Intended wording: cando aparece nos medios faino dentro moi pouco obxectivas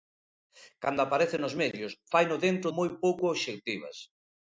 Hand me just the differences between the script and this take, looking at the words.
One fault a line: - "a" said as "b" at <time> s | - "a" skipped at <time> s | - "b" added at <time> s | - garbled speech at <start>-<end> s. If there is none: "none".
none